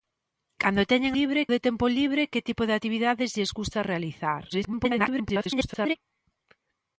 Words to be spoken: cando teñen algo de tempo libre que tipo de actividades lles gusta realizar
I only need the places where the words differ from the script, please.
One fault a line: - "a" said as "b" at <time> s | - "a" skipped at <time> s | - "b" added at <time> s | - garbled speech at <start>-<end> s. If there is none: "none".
- "algo" said as "libre" at 1.2 s
- garbled speech at 4.5-6.0 s